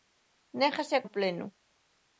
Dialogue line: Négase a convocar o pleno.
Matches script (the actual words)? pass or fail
fail